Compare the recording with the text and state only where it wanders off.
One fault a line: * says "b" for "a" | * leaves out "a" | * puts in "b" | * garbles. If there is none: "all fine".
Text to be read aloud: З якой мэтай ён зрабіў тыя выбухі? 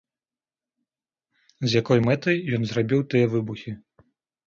all fine